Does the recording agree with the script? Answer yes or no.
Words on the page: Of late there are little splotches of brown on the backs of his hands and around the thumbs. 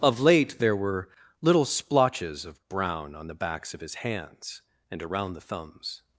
no